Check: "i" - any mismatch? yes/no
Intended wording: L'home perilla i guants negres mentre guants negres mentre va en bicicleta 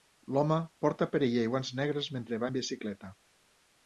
no